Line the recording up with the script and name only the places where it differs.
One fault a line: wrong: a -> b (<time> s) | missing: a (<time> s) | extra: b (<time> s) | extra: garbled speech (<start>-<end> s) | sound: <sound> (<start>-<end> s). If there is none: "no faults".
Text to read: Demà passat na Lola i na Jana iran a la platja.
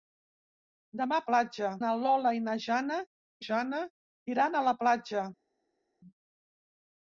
wrong: passat -> platja (1.3 s)
extra: Jana (3.5 s)